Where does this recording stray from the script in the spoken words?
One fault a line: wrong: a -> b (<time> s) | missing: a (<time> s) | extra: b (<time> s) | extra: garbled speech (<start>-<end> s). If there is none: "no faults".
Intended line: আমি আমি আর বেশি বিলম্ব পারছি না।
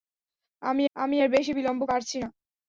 no faults